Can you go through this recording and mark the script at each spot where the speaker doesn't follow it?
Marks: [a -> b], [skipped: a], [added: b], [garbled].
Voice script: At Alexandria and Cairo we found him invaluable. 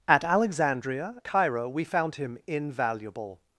At Alexandria [skipped: and] Cairo we found him invaluable.